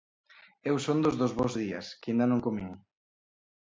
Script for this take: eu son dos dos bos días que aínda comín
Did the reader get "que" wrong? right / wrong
right